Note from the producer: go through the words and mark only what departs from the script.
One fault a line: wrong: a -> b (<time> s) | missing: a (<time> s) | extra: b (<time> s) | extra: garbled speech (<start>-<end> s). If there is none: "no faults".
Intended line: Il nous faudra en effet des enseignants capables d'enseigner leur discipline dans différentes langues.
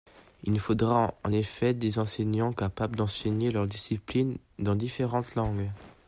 no faults